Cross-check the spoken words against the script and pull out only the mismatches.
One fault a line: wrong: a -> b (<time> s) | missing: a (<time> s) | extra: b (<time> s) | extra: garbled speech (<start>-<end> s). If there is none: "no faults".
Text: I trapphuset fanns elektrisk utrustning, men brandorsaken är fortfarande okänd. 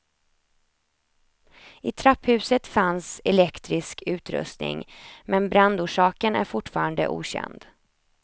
no faults